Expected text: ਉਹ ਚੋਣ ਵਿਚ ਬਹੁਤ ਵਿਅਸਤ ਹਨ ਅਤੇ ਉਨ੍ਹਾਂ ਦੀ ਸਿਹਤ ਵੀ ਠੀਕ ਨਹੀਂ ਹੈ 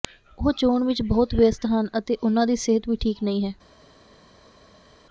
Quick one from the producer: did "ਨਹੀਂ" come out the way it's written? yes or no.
yes